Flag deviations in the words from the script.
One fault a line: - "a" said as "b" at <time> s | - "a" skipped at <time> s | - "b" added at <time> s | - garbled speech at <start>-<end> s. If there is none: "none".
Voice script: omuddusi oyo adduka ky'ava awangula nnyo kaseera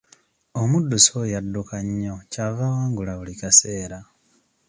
- "nnyo" added at 1.9 s
- "nnyo" said as "buli" at 3.2 s